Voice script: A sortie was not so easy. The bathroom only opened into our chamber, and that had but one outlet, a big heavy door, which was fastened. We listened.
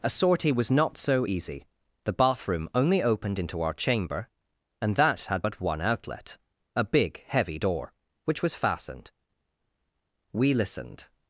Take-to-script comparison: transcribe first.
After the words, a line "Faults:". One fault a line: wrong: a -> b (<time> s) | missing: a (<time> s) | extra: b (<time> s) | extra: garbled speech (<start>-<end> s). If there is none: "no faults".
A sortie was not so easy. The bathroom only opened into our chamber, and that had but one outlet, a big heavy door, which was fastened. We listened.
Faults:
no faults